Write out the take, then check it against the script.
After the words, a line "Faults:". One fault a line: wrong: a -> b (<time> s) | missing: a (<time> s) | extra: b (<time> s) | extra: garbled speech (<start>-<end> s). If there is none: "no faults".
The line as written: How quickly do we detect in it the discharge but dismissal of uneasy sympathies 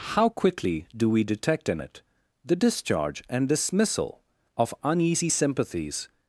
How quickly do we detect in it the discharge and dismissal of uneasy sympathies
Faults:
wrong: but -> and (3.3 s)